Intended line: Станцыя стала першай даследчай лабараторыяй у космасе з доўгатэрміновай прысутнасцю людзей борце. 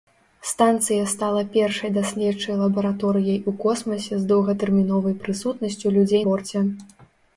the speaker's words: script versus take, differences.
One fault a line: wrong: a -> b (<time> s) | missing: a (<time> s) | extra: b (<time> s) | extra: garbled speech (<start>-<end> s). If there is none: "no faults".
no faults